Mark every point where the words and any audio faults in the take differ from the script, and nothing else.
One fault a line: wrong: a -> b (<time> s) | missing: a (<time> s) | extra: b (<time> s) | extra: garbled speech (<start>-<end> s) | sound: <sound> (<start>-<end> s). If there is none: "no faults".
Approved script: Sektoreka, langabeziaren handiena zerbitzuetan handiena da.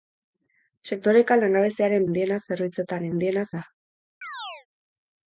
sound: chirp (4.2-4.7 s)